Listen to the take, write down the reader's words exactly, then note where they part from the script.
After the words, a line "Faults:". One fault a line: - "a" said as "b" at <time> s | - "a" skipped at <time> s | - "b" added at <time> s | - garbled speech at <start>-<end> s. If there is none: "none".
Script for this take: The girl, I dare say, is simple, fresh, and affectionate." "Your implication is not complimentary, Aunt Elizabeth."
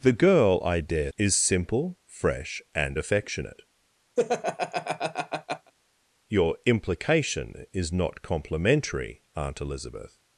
The girl, I dare is simple, fresh, and affectionate." "Your implication is not complimentary, Aunt Elizabeth."
Faults:
- "say" skipped at 1.1 s